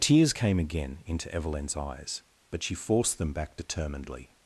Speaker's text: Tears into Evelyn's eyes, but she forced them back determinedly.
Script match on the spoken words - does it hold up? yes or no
no